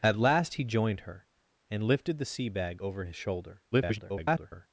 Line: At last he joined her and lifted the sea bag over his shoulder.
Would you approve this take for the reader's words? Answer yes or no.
no